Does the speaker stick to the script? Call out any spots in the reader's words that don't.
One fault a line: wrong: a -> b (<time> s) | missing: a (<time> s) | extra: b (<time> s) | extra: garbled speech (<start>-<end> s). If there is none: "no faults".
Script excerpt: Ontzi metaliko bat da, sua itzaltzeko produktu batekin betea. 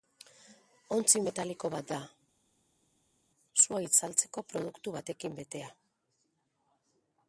no faults